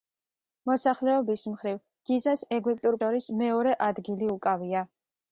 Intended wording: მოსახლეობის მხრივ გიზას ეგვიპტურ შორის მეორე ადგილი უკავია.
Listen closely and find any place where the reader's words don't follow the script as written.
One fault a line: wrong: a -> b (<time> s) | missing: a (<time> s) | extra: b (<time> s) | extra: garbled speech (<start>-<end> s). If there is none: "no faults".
no faults